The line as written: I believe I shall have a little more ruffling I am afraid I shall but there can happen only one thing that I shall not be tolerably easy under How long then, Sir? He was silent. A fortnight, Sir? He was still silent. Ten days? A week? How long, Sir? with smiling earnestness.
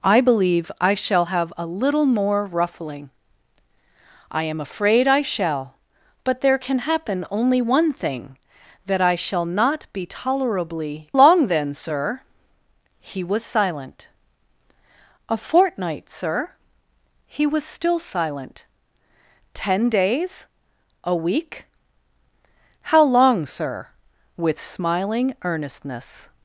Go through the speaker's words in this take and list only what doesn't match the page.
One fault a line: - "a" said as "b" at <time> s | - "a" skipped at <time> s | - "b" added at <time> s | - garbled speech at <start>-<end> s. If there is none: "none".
- "easy under How" skipped at 11.1 s